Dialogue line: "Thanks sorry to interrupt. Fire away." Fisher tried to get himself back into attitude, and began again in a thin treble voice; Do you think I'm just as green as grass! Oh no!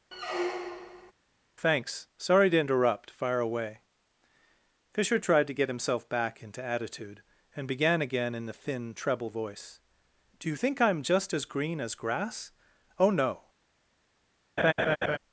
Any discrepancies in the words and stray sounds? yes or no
yes